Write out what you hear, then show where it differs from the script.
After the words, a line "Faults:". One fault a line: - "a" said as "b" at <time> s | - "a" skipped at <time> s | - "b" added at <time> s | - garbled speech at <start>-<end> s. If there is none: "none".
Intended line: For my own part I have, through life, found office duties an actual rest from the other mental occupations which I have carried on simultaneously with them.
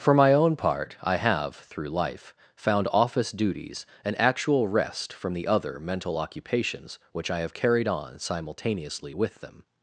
For my own part I have, through life, found office duties an actual rest from the other mental occupations which I have carried on simultaneously with them.
Faults:
none